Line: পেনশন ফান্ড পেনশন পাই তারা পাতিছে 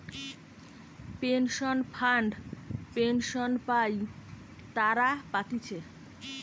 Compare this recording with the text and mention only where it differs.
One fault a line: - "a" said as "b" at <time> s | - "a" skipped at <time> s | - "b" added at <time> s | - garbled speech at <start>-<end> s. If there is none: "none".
none